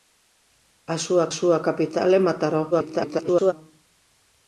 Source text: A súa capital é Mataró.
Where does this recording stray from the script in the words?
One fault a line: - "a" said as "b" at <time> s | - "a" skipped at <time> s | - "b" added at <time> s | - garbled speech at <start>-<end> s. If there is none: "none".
- "súa" added at 1.4 s
- garbled speech at 2.7-3.5 s